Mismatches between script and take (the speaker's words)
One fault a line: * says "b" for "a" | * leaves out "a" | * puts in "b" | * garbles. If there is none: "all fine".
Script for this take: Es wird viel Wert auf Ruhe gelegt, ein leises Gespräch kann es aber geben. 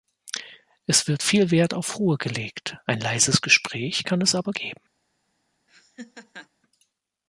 all fine